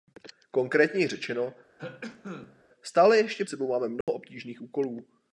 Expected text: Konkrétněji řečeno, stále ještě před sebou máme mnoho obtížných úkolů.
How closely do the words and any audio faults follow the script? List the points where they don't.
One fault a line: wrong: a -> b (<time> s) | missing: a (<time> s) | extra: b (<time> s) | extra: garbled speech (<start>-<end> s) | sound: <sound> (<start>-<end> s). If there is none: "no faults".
sound: cough (1.8-2.6 s)
missing: před (3.4 s)
sound: dropout (4.0-4.1 s)